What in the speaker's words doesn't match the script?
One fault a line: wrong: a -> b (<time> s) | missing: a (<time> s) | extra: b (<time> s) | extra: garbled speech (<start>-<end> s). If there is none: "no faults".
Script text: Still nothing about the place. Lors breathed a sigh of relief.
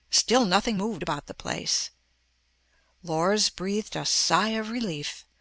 extra: moved (0.8 s)